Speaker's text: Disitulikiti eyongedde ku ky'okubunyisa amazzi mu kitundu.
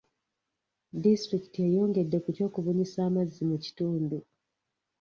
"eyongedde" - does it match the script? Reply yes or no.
yes